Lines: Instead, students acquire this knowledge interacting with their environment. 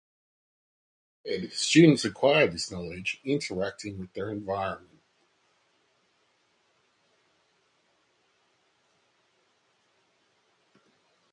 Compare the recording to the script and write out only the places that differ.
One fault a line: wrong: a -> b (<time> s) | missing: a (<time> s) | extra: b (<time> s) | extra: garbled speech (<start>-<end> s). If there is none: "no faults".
no faults